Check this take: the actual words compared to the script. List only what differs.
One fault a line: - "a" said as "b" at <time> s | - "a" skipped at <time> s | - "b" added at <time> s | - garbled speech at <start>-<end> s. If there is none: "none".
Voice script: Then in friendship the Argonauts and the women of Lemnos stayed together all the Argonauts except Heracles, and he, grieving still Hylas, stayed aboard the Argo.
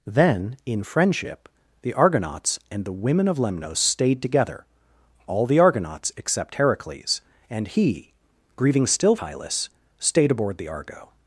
none